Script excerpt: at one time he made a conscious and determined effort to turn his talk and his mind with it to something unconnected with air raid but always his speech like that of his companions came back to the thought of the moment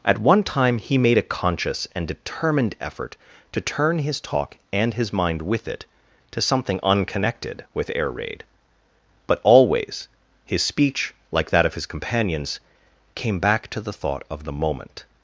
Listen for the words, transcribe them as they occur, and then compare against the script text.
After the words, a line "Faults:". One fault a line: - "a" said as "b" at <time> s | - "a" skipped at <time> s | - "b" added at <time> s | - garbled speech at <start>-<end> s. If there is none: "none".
at one time he made a conscious and determined effort to turn his talk and his mind with it to something unconnected with air raid but always his speech like that of his companions came back to the thought of the moment
Faults:
none